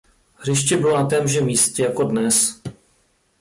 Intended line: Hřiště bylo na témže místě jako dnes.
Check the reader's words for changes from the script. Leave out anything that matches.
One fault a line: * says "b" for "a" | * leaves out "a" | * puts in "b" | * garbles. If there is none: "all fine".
all fine